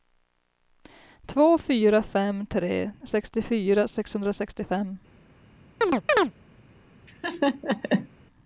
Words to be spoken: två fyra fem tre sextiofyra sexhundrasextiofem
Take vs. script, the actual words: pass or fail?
pass